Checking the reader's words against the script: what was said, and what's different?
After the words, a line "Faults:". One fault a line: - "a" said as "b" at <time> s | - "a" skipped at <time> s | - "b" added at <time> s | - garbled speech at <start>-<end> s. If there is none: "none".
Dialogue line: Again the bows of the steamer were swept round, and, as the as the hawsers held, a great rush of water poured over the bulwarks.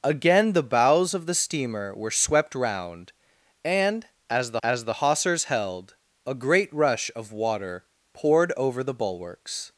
Again the bows of the steamer were swept round, and, as the as the hawsers held, a great rush of water poured over the bulwarks.
Faults:
none